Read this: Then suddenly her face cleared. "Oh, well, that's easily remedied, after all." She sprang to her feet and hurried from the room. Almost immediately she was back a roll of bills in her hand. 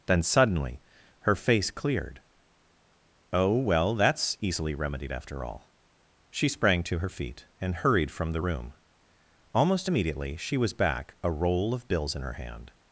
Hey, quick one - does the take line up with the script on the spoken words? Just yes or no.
yes